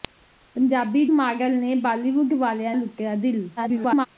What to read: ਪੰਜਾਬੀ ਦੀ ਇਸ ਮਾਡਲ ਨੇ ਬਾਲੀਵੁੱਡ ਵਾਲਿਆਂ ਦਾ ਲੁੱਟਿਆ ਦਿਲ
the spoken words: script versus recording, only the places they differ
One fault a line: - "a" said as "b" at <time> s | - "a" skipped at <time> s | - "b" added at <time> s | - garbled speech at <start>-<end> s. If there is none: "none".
- "ਦੀ ਇਸ" skipped at 1.0 s
- "ਦਾ" skipped at 2.7 s
- garbled speech at 3.6-4.1 s